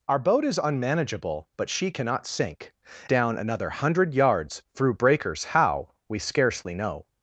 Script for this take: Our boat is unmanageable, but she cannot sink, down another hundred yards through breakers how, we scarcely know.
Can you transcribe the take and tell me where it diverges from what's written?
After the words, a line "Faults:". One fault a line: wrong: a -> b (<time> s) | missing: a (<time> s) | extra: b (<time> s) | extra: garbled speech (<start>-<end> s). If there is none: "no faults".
Our boat is unmanageable, but she cannot sink, down another hundred yards through breakers how, we scarcely know.
Faults:
no faults